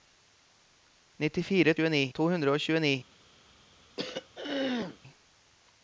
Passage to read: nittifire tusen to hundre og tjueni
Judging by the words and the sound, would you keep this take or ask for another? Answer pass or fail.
fail